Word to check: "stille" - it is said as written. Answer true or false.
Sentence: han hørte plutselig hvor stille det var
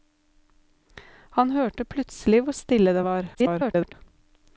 true